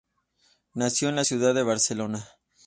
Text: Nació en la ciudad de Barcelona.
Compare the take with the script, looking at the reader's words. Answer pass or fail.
pass